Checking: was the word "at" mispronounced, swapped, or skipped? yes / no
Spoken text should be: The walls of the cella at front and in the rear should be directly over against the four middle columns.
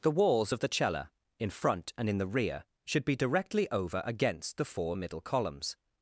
yes